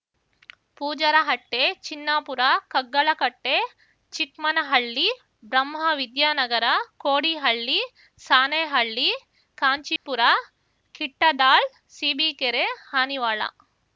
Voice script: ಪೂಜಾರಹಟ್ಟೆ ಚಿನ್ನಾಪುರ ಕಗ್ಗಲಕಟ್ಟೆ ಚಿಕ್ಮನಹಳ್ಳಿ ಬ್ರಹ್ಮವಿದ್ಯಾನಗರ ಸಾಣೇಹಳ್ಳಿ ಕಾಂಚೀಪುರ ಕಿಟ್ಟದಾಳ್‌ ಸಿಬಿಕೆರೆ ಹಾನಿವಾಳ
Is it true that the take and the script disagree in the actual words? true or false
true